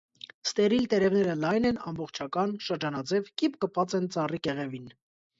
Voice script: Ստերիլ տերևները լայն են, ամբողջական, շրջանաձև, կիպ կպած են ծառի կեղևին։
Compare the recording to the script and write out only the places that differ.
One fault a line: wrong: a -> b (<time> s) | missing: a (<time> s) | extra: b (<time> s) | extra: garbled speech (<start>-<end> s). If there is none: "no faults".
no faults